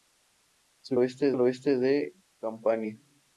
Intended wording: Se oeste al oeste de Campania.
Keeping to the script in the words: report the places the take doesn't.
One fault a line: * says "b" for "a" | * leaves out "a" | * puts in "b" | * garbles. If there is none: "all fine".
all fine